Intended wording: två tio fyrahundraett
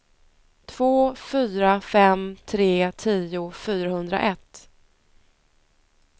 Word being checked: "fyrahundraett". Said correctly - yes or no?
yes